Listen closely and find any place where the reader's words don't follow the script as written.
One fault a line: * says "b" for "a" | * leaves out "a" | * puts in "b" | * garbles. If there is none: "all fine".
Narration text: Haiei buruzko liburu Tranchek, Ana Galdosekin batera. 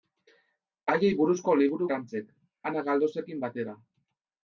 all fine